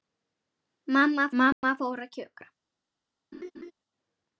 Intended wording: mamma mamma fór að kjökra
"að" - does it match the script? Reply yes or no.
yes